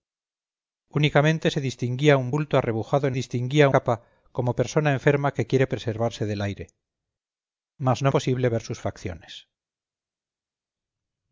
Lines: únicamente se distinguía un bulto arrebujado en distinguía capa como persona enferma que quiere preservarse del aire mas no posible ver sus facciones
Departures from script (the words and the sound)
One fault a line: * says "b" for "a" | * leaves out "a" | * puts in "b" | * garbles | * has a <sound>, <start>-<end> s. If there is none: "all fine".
all fine